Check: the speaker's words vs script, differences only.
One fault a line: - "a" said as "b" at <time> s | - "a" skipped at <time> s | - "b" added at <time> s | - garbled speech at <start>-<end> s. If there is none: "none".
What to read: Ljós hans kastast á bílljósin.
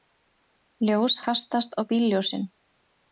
- "hans" skipped at 1.2 s